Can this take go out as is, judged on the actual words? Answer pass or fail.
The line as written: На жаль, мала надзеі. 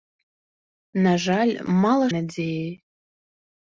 pass